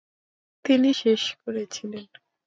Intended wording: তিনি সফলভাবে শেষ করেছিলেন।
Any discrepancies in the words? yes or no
yes